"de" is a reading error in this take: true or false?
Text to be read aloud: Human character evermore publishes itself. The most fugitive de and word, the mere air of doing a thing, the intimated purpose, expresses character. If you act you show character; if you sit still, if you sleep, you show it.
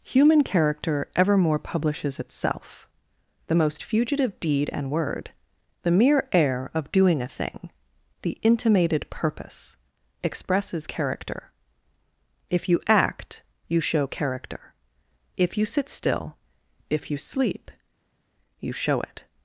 true